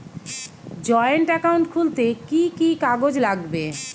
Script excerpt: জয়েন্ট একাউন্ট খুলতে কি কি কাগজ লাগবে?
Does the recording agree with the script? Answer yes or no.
yes